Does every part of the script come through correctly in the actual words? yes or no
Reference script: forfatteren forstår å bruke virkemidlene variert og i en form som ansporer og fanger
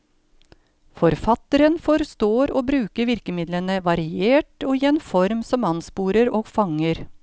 yes